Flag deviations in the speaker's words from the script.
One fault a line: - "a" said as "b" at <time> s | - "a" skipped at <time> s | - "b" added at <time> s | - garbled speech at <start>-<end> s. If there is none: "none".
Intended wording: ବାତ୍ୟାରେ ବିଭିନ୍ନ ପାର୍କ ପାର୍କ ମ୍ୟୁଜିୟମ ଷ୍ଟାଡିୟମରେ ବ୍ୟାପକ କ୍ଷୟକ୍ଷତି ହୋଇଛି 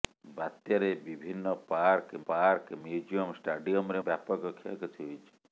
none